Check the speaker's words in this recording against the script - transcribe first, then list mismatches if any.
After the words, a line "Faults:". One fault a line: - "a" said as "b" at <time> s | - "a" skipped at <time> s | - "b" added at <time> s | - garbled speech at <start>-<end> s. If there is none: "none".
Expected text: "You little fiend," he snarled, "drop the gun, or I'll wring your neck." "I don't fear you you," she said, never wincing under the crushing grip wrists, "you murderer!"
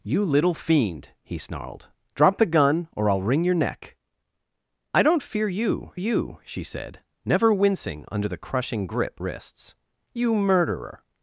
"You little fiend," he snarled, "drop the gun, or I'll wring your neck." "I don't fear you you," she said, never wincing under the crushing grip wrists, "you murderer!"
Faults:
none